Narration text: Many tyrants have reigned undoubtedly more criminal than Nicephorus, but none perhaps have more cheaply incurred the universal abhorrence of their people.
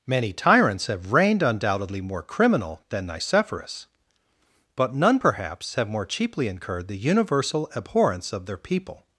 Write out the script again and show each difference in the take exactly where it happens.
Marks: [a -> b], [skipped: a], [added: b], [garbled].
Many tyrants have reigned undoubtedly more criminal than Nicephorus, but none perhaps have more cheaply incurred the universal abhorrence of their people.